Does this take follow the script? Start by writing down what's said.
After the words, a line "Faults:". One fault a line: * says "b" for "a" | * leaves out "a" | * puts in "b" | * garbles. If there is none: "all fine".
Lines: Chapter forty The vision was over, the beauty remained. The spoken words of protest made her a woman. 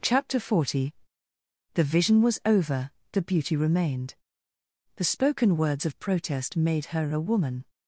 Chapter forty The vision was over, the beauty remained. The spoken words of protest made her a woman.
Faults:
all fine